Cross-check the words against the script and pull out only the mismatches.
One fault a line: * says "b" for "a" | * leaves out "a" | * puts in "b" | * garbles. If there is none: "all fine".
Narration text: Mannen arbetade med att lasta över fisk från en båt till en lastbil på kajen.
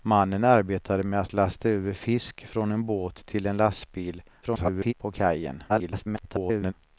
* garbles
* garbles